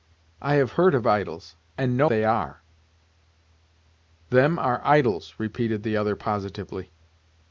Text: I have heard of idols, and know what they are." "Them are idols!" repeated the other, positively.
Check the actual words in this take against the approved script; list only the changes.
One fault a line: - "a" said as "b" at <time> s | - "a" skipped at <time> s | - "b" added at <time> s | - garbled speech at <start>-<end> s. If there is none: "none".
- "what" skipped at 2.1 s